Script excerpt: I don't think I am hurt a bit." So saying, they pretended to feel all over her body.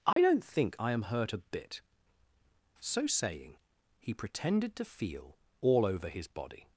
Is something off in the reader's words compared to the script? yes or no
yes